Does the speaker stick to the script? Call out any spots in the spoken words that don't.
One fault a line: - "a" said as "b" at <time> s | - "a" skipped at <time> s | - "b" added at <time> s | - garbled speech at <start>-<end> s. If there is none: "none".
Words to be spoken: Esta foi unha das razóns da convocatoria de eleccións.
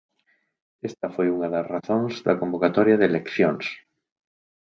none